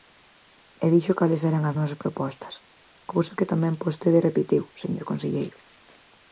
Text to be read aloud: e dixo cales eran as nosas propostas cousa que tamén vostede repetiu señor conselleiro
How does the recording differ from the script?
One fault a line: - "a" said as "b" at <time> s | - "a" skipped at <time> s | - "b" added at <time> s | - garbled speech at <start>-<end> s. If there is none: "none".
none